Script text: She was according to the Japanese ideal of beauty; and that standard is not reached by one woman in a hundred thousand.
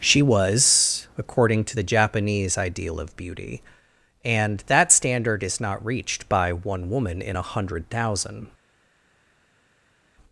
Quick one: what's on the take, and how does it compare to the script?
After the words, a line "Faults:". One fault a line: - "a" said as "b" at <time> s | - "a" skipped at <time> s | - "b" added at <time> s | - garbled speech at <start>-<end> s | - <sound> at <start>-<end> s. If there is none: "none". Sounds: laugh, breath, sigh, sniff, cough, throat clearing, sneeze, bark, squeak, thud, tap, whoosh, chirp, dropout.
She was according to the Japanese ideal of beauty; and that standard is not reached by one woman in a hundred thousand.
Faults:
none